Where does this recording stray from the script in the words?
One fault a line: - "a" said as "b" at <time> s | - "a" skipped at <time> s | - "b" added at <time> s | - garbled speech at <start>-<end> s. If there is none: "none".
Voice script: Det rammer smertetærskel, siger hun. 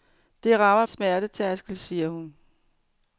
none